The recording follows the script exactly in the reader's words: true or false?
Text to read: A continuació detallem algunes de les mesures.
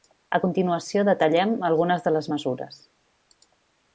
true